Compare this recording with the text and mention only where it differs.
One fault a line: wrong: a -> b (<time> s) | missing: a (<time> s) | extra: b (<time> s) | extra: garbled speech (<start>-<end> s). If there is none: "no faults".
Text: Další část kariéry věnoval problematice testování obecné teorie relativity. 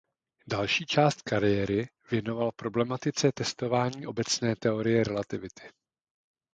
no faults